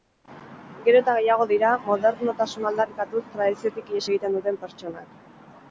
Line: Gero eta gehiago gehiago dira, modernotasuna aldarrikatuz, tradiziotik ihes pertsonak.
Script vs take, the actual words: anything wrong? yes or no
yes